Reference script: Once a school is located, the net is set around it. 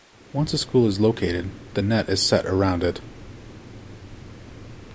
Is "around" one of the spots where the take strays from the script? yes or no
no